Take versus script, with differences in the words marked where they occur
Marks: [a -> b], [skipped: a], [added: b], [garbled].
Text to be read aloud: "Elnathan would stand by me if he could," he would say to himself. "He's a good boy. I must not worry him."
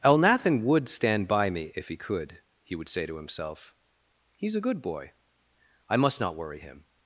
"Elnathan would stand by me if he could," he would say to himself. "He's a good boy. I must not worry him."